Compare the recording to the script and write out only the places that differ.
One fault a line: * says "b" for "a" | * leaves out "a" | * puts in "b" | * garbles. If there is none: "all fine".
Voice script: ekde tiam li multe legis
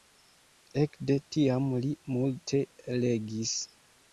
all fine